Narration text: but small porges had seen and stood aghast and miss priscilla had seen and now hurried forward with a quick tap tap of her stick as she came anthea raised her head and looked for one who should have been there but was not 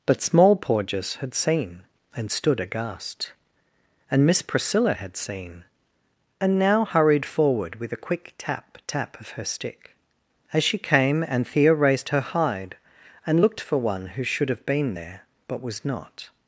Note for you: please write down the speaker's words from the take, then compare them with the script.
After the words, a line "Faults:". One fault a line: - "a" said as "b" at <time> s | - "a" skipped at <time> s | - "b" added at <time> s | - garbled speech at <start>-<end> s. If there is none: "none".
but small porges had seen and stood aghast and miss priscilla had seen and now hurried forward with a quick tap tap of her stick as she came anthea raised her hide and looked for one who should have been there but was not
Faults:
- "head" said as "hide" at 12.2 s